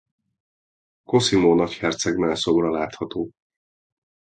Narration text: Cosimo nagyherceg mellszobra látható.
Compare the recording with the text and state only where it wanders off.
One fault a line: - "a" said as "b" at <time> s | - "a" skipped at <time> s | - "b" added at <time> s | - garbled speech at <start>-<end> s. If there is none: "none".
none